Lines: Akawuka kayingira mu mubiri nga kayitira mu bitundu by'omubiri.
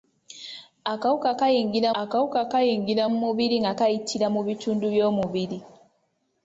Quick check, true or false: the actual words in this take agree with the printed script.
false